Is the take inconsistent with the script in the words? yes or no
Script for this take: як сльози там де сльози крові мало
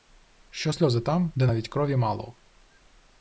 yes